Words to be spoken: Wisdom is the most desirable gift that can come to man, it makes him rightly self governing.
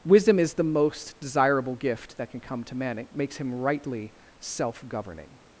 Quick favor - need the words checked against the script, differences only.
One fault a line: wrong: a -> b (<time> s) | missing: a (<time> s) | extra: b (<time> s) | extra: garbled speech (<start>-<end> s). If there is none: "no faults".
no faults